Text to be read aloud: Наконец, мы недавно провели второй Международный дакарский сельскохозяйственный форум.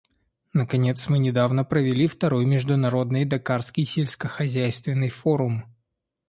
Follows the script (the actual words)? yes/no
yes